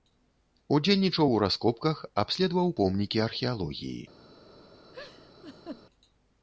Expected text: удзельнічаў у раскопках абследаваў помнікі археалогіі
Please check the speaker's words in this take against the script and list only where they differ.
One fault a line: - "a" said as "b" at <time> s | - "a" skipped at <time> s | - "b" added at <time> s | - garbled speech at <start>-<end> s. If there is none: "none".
none